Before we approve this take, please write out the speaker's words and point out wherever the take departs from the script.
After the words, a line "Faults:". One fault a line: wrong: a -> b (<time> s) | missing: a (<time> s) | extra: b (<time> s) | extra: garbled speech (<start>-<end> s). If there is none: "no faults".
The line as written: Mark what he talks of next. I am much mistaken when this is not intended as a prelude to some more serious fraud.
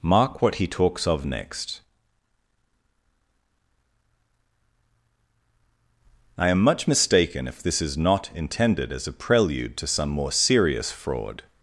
Mark what he talks of next. I am much mistaken if this is not intended as a prelude to some more serious fraud.
Faults:
wrong: when -> if (7.5 s)